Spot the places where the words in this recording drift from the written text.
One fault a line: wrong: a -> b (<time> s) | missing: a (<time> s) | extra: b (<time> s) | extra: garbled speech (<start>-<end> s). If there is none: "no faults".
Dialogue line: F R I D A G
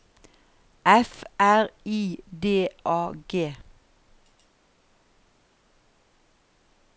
no faults